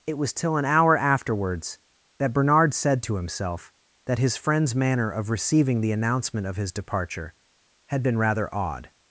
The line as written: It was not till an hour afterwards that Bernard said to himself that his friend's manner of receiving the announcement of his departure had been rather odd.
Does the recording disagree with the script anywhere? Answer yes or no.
yes